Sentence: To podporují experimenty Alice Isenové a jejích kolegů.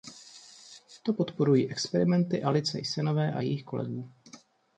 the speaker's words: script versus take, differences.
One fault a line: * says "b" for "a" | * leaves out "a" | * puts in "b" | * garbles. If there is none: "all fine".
all fine